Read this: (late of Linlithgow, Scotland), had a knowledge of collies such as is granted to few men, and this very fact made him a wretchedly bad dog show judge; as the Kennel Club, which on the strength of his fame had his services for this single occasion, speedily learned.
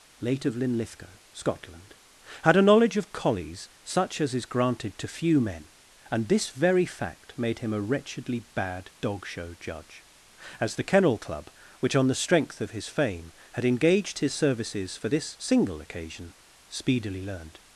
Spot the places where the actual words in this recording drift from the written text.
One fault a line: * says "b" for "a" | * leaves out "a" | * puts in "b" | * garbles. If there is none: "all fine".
* puts in "engaged"